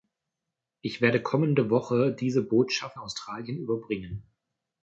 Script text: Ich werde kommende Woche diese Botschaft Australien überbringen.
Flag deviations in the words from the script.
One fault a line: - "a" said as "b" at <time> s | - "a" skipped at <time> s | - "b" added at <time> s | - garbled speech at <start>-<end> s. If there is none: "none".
none